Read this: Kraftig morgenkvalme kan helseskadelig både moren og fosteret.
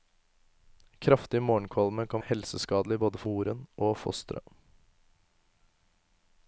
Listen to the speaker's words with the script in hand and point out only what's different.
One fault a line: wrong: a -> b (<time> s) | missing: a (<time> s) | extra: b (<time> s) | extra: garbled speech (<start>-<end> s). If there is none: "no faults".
no faults